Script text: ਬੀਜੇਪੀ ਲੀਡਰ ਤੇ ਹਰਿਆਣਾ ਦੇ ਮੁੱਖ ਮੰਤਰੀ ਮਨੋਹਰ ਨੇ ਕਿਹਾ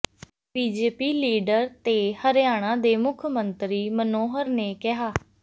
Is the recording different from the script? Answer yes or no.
no